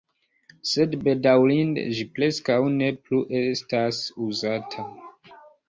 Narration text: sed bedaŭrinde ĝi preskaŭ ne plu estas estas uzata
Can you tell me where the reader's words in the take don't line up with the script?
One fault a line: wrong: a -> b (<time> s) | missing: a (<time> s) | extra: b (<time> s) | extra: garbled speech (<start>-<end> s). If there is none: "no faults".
missing: estas (4.0 s)